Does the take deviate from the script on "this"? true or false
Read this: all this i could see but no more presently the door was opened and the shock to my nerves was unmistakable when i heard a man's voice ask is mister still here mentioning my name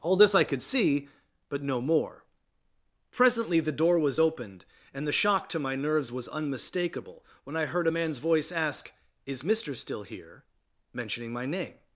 false